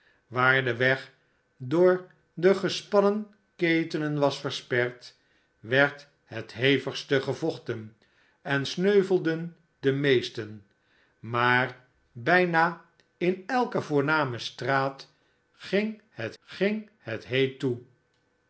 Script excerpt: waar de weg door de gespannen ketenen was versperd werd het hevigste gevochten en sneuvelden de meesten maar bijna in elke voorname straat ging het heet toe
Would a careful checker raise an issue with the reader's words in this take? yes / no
yes